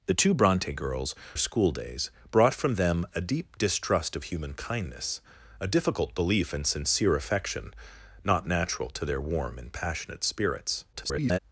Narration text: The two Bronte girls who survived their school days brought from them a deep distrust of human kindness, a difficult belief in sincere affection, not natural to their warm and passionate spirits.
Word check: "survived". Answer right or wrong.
wrong